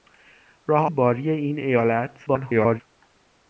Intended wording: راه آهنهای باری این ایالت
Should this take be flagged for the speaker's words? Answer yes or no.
yes